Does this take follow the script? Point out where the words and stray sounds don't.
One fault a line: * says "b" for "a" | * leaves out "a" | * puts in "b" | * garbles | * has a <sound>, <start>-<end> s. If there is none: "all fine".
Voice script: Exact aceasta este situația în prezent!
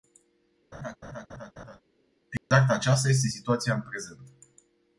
* has a laugh, 0.7-1.8 s
* has a dropout, 2.4-2.5 s